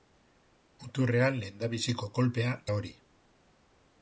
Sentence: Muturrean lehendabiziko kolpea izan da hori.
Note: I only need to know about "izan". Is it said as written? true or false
false